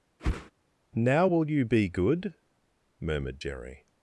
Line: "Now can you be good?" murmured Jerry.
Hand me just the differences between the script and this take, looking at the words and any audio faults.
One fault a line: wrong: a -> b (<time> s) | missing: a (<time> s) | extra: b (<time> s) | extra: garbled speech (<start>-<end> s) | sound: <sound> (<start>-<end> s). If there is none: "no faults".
sound: whoosh (0.2-0.5 s)
wrong: can -> will (1.2 s)